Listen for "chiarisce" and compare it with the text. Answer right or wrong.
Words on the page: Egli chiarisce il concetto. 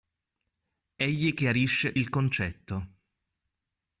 right